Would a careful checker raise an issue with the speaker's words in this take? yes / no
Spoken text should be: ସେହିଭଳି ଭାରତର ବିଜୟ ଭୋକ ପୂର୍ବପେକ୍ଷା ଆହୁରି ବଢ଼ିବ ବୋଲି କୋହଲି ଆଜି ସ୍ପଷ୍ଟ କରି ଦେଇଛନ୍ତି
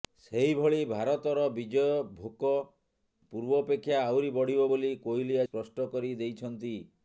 yes